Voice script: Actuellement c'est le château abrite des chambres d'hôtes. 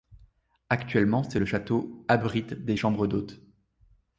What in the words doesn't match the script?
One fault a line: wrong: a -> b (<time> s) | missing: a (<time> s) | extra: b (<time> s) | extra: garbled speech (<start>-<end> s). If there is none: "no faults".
no faults